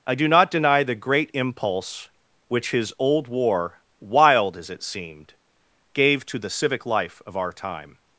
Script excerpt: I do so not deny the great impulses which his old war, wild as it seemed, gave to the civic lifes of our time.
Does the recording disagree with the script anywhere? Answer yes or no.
yes